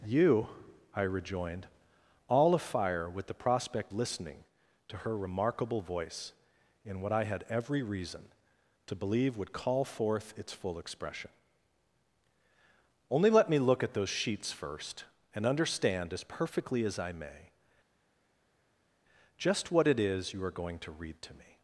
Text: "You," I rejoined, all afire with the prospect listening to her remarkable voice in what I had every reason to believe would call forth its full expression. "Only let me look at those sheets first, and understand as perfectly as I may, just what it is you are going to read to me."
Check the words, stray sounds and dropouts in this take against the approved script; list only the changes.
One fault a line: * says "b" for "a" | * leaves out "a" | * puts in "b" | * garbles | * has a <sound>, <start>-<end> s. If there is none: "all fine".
all fine